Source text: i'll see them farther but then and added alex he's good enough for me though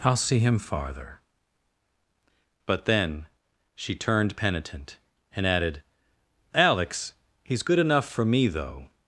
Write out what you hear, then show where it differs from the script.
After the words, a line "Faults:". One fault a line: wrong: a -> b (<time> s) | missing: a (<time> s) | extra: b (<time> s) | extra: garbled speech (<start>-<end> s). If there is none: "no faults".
i'll see him farther but then she turned penitent and added alex he's good enough for me though
Faults:
wrong: them -> him (0.4 s)
extra: she turned penitent (3.8 s)